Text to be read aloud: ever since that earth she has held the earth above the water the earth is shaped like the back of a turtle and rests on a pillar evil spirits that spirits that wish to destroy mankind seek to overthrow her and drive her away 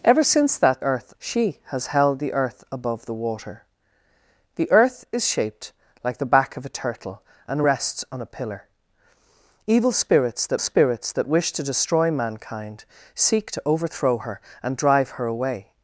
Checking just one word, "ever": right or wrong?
right